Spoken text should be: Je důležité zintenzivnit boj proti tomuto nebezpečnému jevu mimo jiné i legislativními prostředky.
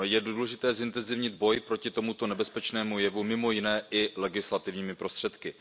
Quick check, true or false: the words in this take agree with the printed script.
true